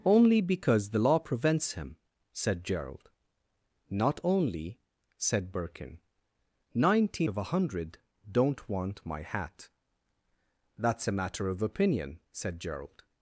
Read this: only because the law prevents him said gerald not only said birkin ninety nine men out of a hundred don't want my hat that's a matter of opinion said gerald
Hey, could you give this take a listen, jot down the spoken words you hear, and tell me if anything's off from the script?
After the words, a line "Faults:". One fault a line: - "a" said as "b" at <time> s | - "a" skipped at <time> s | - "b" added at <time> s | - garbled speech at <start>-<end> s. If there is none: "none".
only because the law prevents him said gerald not only said birkin ninety of a hundred don't want my hat that's a matter of opinion said gerald
Faults:
- "nine men out" skipped at 7.3 s